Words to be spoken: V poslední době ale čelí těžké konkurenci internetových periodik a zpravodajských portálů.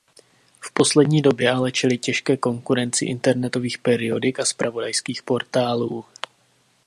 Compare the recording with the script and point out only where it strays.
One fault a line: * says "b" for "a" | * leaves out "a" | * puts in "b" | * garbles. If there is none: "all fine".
all fine